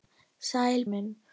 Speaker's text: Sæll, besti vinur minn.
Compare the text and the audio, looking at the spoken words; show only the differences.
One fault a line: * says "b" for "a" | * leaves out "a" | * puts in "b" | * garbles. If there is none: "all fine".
* leaves out "besti vinur"